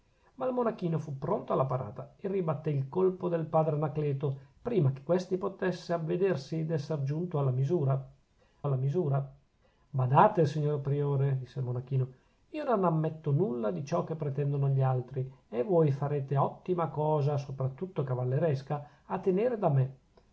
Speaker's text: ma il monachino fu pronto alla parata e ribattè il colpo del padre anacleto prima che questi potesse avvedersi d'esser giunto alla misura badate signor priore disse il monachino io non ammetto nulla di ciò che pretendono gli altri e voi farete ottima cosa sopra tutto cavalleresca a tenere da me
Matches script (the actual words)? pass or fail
fail